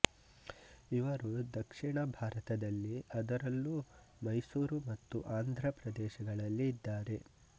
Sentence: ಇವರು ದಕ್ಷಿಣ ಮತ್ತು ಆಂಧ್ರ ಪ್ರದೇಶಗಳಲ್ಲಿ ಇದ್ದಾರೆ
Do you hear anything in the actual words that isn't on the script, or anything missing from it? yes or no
yes